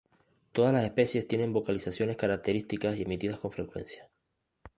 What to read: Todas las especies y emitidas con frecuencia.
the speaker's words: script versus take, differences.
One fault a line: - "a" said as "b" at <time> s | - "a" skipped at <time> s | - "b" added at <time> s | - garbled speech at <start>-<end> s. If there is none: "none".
- "tienen vocalizaciones características" added at 1.3 s